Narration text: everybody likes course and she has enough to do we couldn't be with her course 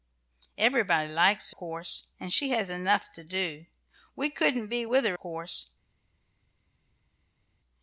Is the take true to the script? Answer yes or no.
yes